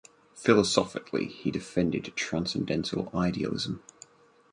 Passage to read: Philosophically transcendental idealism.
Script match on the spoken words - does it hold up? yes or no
no